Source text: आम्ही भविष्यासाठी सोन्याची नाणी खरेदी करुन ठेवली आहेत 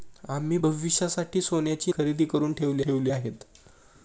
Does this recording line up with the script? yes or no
no